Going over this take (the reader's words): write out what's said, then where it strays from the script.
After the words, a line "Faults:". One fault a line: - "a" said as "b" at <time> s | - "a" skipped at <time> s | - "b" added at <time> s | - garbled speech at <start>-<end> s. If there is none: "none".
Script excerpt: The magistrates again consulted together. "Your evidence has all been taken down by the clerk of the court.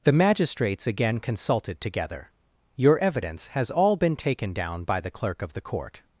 The magistrates again consulted together. "Your evidence has all been taken down by the clerk of the court.
Faults:
none